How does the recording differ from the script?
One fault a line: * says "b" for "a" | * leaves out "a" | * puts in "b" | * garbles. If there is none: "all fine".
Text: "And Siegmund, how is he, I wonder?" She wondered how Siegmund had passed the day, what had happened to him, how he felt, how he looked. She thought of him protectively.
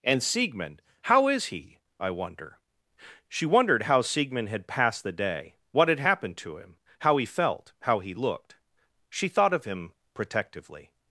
all fine